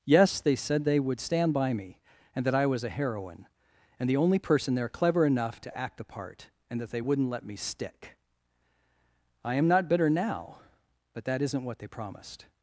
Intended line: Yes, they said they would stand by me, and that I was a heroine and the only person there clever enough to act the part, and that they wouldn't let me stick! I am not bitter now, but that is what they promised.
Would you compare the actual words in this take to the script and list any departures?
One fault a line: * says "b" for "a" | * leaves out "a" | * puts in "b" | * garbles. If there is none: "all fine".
* says "isn't" for "is"